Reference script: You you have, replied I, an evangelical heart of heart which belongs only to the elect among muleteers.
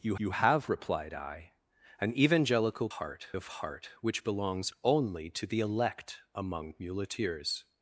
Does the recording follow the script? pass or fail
pass